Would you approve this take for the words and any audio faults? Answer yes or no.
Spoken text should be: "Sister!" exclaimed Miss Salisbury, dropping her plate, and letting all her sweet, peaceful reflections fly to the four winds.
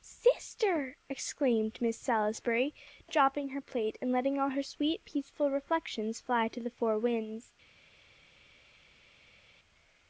yes